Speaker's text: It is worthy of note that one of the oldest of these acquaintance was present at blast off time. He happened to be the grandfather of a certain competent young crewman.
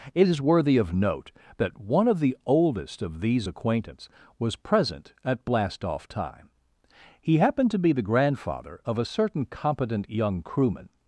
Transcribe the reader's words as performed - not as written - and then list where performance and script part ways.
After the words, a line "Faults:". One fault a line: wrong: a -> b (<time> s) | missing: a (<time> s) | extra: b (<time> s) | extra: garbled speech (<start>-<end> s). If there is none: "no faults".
It is worthy of note that one of the oldest of these acquaintance was present at blast off time. He happened to be the grandfather of a certain competent young crewman.
Faults:
no faults